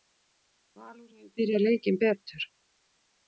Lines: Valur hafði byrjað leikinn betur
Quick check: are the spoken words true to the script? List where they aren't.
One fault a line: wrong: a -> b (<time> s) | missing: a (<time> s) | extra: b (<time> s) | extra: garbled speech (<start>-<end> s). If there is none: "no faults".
wrong: hafði -> hefur (1.1 s)